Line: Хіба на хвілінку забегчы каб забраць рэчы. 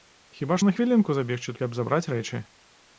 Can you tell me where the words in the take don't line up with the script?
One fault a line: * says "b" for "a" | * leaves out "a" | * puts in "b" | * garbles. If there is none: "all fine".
all fine